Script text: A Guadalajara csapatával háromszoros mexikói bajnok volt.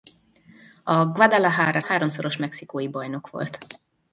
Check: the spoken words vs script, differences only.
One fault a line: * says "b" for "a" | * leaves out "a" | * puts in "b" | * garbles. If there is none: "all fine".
* leaves out "csapatával"